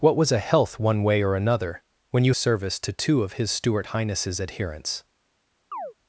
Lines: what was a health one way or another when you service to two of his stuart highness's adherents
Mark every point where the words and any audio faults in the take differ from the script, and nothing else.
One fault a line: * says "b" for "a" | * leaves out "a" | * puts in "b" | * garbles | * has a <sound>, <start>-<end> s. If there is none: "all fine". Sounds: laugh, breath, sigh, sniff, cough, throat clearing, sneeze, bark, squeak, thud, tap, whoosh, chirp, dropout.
* has a chirp, 5.7-5.9 s